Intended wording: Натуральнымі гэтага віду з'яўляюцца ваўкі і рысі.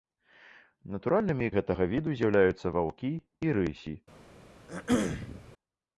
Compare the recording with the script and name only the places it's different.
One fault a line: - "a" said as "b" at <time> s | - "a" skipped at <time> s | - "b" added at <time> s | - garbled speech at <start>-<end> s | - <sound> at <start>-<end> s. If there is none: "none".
- throat clearing at 4.7-5.5 s